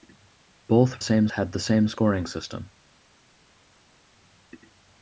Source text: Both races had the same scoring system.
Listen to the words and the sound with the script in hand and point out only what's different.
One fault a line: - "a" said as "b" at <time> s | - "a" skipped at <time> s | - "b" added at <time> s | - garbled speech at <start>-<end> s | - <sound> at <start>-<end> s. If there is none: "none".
- "races" said as "same" at 1.0 s